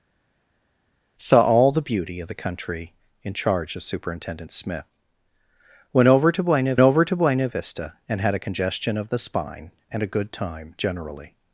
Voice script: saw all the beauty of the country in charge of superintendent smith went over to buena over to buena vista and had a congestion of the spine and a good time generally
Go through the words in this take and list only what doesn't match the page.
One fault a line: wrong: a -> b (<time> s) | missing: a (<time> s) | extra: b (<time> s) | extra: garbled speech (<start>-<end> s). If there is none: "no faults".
no faults